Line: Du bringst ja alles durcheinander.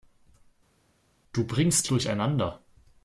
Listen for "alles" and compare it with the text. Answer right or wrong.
wrong